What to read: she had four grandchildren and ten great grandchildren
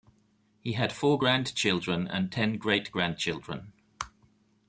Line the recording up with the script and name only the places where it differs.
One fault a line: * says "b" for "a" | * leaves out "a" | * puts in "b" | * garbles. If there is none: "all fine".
* says "he" for "she"